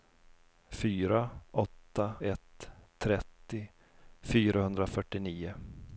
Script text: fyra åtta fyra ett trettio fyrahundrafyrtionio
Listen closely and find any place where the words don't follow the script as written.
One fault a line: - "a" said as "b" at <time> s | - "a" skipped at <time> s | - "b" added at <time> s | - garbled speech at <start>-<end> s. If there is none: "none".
- "fyra" skipped at 2.1 s